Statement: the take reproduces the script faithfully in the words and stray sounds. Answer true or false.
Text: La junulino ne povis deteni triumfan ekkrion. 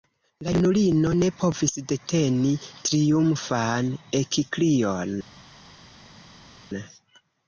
true